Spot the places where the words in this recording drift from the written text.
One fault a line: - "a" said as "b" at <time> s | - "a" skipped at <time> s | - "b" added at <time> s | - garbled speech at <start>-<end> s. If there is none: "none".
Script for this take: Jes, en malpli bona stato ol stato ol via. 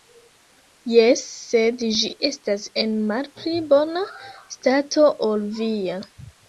- "sed ĝi estas" added at 1.5 s
- "stato ol" skipped at 5.5 s